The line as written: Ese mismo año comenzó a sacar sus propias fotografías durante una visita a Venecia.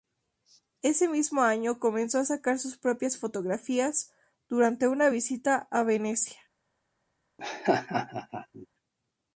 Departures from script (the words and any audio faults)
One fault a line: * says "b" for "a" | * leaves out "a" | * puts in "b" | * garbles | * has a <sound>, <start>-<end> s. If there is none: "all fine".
* has a laugh, 7.4-8.7 s